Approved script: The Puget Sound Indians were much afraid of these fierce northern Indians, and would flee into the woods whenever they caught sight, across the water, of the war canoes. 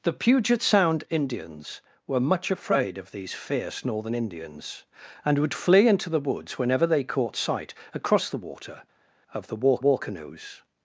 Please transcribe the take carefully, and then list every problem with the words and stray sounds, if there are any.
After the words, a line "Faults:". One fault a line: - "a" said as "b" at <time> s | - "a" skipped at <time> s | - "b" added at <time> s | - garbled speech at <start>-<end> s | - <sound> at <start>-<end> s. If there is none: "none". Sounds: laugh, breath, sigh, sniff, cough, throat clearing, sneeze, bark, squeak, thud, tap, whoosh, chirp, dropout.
The Puget Sound Indians were much afraid of these fierce northern Indians, and would flee into the woods whenever they caught sight, across the water, of the war war canoes.
Faults:
- "war" added at 9.8 s